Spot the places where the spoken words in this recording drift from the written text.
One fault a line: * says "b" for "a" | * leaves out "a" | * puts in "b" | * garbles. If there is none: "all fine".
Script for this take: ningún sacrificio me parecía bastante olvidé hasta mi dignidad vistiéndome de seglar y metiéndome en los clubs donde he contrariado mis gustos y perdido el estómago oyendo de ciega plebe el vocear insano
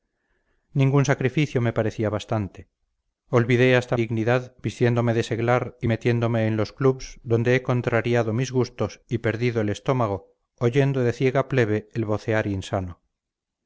* leaves out "mi"